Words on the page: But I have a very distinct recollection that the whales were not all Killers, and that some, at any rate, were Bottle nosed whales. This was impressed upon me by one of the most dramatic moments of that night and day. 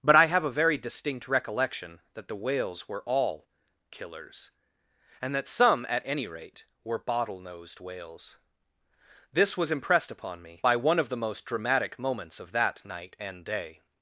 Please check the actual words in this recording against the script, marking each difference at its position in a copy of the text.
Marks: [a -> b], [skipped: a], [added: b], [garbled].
But I have a very distinct recollection that the whales were [skipped: not] all Killers, and that some, at any rate, were Bottle nosed whales. This was impressed upon me by one of the most dramatic moments of that night and day.